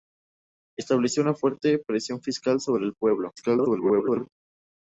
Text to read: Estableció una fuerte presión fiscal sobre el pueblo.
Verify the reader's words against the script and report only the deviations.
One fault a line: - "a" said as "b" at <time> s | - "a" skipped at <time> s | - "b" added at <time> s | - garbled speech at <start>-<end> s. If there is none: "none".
- garbled speech at 3.4-4.3 s